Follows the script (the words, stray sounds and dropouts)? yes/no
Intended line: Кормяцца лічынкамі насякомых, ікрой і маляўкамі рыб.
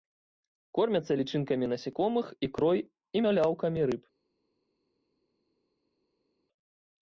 yes